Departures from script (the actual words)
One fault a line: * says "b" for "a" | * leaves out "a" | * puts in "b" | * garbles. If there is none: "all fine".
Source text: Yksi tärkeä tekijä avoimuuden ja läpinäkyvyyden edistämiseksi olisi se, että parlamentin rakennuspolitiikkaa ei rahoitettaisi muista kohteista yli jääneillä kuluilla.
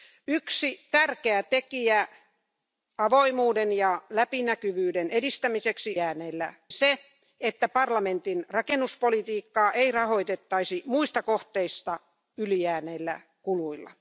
* says "jääneillä" for "olisi"